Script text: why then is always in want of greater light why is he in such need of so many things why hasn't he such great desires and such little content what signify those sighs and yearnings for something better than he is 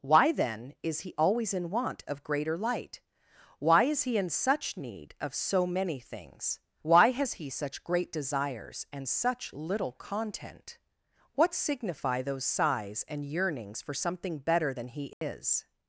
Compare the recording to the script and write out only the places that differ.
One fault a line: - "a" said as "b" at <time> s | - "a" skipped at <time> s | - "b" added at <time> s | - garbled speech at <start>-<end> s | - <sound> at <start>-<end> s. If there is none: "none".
- "he" added at 1.0 s
- "hasn't" said as "has" at 7.1 s
- dropout at 15.1-15.2 s